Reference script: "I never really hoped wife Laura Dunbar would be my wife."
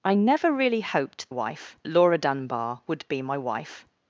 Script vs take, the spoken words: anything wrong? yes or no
no